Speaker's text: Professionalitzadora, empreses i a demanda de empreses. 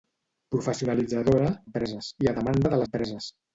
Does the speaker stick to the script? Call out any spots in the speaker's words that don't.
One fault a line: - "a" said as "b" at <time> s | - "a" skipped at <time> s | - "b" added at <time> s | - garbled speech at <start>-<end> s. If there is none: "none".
none